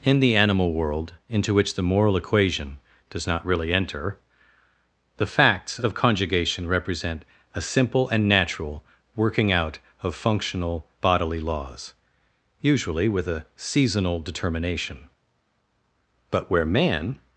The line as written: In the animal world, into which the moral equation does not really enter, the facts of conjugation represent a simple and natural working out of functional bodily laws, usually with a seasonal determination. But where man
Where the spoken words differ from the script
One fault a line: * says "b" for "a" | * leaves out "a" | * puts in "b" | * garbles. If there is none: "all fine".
all fine